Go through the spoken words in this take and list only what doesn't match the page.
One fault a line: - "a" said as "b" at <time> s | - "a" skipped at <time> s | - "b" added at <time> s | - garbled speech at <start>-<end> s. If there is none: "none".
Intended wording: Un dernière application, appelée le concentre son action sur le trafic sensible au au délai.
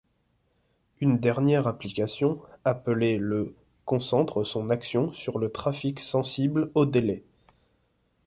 - "Un" said as "Une" at 1.0 s
- "au" skipped at 6.9 s